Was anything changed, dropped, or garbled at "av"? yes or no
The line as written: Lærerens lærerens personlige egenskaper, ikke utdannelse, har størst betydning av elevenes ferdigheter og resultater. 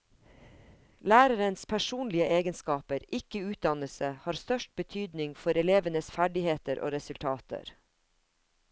yes